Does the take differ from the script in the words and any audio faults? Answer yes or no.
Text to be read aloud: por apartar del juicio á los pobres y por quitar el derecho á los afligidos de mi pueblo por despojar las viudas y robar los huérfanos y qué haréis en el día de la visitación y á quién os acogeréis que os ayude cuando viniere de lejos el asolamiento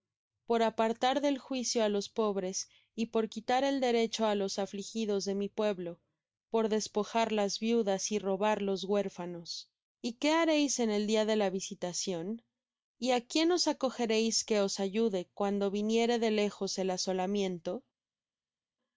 no